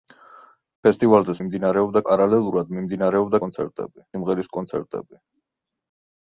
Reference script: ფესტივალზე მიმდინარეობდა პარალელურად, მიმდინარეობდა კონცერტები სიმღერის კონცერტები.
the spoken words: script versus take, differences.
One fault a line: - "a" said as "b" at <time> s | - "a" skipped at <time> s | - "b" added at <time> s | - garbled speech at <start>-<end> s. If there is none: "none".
none